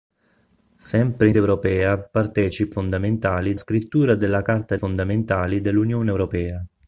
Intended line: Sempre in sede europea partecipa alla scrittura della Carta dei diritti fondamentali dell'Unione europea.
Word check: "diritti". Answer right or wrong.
wrong